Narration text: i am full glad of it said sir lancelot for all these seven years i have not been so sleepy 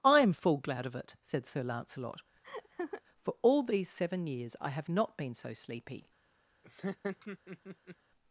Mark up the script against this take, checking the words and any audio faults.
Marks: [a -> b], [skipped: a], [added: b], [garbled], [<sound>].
i am full glad of it said sir lancelot [laugh] for all these seven years i have not been so sleepy [laugh]